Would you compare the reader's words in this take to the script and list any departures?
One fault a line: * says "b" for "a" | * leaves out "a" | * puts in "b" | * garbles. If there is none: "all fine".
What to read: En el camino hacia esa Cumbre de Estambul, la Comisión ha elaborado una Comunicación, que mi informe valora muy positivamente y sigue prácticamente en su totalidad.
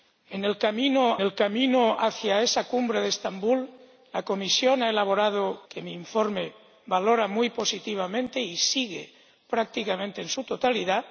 * puts in "el camino"
* leaves out "una Comunicación"